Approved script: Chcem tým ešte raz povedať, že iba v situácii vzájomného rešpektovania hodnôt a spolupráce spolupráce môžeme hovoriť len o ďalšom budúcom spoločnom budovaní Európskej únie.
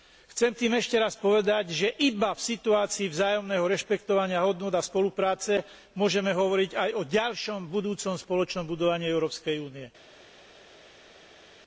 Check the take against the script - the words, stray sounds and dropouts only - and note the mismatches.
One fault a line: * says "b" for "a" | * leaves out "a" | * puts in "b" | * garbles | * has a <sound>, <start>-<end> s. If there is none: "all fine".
* leaves out "spolupráce"
* says "aj" for "len"